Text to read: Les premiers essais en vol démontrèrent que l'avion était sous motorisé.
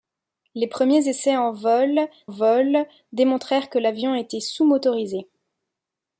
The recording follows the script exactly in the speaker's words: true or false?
false